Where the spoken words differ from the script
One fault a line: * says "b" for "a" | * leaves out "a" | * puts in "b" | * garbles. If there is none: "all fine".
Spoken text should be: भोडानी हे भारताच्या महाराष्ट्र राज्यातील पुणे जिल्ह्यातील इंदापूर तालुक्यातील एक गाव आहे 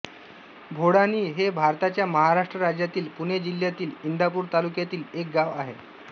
all fine